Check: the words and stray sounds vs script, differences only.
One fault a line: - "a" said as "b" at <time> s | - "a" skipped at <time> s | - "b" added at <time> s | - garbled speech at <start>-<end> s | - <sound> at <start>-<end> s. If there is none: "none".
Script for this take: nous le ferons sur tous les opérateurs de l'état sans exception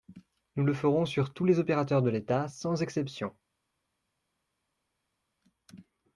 none